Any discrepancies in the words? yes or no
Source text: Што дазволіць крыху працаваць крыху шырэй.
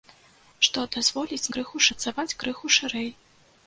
no